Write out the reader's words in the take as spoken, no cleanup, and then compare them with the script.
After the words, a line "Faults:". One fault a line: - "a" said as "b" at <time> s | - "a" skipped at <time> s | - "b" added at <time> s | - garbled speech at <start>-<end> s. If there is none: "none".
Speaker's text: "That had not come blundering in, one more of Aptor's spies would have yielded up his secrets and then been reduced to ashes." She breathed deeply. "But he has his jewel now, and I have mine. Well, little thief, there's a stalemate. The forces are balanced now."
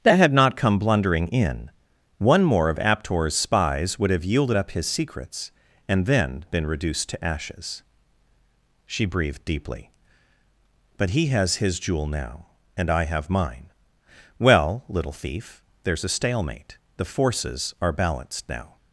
"That had not come blundering in, one more of Aptor's spies would have yielded up his secrets and then been reduced to ashes." She breathed deeply. "But he has his jewel now, and I have mine. Well, little thief, there's a stalemate. The forces are balanced now."
Faults:
none